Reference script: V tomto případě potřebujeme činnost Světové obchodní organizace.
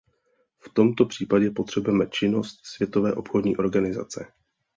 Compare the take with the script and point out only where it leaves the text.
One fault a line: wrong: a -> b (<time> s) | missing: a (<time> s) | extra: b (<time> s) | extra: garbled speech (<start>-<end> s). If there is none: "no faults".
no faults